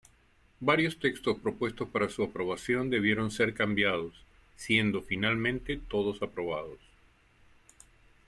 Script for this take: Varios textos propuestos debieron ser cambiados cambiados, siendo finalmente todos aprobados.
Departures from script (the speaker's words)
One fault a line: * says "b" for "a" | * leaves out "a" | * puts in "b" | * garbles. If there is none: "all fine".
* puts in "para su aprobación"
* leaves out "cambiados"